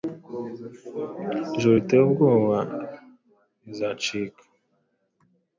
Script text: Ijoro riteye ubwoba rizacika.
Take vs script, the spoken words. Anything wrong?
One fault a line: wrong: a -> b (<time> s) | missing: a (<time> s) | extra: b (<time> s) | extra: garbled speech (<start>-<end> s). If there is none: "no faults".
no faults